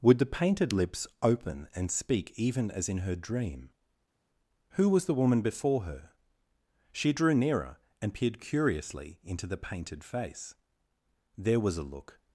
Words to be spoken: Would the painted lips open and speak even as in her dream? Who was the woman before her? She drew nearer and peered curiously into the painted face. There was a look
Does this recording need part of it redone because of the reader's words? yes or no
no